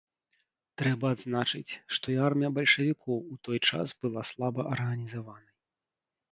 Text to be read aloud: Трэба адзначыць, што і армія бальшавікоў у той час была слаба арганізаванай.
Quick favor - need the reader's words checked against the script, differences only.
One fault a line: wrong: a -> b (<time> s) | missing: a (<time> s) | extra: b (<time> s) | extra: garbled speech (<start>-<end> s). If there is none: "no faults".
no faults